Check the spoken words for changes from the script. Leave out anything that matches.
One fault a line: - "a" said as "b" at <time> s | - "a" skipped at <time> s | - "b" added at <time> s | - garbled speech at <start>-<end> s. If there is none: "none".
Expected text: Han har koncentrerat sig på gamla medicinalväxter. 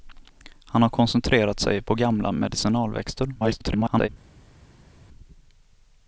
- garbled speech at 3.4-4.1 s